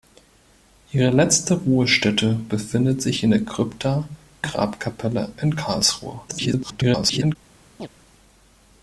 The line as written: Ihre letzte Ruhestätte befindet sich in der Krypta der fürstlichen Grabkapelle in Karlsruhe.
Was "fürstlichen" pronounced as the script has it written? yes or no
no